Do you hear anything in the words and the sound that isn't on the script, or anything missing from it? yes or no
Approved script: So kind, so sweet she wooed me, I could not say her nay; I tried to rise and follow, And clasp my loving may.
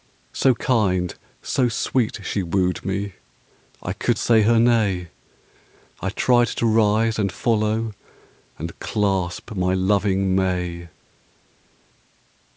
yes